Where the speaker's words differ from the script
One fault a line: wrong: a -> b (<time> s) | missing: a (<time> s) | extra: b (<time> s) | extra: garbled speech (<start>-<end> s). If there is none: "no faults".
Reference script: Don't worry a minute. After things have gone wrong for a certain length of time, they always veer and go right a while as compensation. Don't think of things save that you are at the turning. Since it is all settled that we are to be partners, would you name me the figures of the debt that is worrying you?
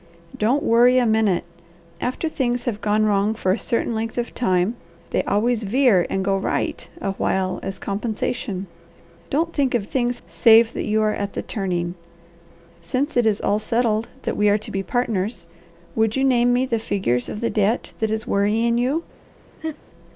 no faults